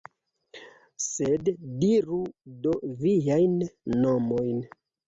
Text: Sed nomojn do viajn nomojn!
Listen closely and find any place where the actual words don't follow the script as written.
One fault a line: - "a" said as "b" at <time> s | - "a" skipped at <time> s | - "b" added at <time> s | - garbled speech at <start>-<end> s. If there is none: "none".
- "nomojn" said as "diru" at 1.8 s